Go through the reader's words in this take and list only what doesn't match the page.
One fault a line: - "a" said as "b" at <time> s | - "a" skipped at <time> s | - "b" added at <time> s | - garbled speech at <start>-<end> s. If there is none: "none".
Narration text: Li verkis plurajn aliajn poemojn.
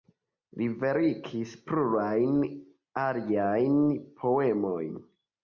none